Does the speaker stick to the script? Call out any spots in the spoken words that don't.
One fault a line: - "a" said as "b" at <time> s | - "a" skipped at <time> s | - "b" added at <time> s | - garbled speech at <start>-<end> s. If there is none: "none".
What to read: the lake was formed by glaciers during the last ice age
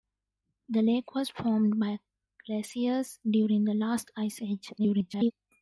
- garbled speech at 4.8-5.3 s